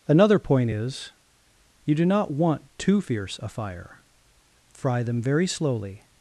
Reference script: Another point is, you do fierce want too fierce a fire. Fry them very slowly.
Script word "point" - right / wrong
right